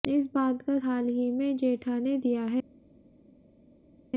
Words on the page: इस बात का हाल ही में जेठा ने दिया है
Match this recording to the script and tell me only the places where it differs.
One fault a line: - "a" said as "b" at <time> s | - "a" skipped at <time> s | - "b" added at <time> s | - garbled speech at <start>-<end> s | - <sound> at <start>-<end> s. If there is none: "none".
none